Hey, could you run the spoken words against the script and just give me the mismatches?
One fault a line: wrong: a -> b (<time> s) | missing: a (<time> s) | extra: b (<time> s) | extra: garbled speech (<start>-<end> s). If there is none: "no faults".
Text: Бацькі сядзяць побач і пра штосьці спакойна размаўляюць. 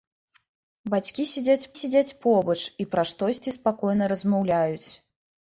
extra: сядзяць (1.8 s)